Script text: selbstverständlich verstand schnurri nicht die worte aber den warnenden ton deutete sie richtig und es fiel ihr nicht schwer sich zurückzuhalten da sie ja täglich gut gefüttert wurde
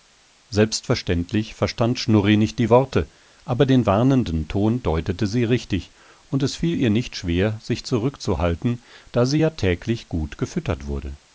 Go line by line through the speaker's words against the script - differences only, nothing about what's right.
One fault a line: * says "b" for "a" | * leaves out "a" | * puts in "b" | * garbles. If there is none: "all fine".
all fine